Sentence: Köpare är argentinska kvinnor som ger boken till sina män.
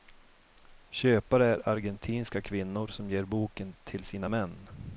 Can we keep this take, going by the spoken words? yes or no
yes